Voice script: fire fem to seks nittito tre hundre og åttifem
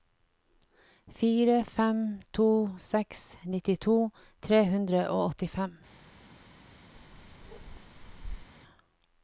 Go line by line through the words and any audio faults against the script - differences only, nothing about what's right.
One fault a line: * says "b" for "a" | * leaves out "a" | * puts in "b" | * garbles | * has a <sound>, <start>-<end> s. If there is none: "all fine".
* has a bark, 6.9-8.5 s